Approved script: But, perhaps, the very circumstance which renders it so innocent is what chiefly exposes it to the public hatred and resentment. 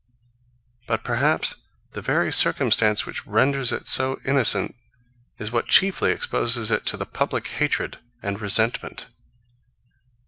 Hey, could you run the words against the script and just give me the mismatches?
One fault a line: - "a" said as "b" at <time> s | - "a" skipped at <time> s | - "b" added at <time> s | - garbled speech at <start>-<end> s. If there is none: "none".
none